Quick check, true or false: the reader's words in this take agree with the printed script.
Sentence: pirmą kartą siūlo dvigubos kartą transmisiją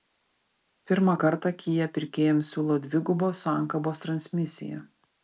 false